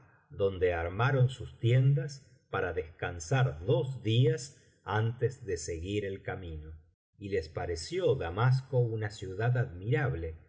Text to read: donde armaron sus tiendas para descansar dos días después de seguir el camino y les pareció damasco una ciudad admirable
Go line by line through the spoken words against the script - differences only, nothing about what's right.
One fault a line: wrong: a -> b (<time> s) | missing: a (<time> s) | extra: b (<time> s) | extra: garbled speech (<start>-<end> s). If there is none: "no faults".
wrong: después -> antes (4.8 s)